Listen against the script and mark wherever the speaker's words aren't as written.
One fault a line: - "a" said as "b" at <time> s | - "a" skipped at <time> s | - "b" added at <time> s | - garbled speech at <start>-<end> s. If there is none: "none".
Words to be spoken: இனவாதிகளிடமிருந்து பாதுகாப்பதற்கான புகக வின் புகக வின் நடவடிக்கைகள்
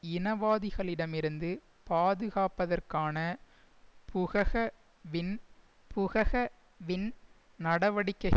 none